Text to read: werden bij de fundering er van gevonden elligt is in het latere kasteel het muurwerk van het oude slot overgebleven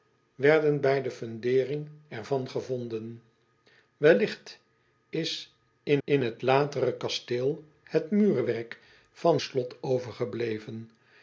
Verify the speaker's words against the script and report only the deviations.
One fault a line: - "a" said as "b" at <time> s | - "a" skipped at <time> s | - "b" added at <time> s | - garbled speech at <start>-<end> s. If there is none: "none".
- "in" added at 6.0 s
- "het oude" skipped at 9.4 s